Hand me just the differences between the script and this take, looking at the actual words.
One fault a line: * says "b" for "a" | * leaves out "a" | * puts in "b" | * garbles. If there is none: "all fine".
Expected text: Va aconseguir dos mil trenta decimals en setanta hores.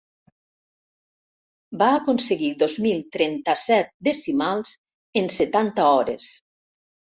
* puts in "set"